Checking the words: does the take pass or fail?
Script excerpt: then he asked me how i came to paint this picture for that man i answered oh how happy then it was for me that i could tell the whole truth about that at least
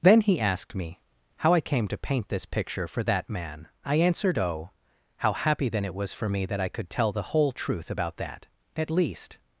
pass